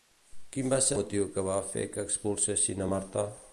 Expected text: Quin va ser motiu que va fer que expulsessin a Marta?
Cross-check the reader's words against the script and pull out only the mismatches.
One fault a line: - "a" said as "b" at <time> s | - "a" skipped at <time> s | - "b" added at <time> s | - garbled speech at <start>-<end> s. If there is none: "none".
none